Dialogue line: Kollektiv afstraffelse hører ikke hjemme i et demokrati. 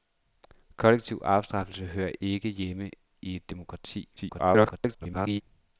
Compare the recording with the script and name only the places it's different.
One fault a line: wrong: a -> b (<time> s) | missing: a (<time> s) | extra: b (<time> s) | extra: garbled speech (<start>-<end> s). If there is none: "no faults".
extra: garbled speech (4.2-5.4 s)